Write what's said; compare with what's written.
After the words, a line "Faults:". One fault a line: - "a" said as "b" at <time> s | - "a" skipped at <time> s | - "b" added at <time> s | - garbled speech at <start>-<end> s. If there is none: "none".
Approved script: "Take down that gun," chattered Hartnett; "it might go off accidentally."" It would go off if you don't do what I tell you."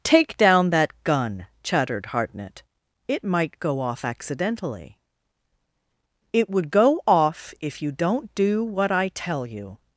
"Take down that gun," chattered Hartnett; "it might go off accidentally."" It would go off if you don't do what I tell you."
Faults:
none